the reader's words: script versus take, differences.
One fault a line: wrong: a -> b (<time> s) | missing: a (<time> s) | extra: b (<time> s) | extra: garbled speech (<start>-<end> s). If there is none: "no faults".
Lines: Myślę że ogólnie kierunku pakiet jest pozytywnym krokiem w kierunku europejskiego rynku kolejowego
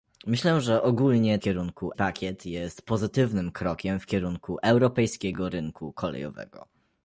no faults